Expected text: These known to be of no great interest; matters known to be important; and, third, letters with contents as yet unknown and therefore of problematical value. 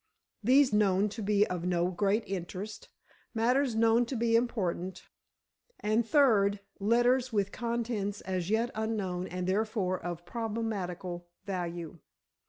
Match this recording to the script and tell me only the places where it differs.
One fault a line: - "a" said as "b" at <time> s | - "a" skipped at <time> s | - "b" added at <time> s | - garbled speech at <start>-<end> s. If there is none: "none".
none